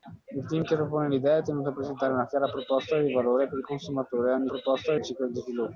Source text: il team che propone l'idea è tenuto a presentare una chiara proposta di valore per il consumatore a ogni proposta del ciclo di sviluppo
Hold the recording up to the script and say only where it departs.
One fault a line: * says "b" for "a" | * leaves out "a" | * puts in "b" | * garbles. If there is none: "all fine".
all fine